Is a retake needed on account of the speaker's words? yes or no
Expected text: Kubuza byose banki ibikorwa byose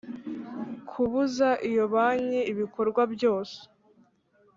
yes